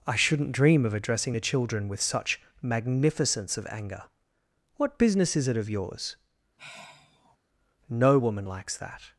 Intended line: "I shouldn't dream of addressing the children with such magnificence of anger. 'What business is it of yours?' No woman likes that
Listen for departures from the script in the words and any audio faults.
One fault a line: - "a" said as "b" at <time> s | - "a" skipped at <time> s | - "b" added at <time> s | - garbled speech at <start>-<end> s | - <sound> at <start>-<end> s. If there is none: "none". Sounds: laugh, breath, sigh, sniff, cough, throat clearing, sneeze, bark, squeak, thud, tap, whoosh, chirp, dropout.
- sigh at 6.6-7.4 s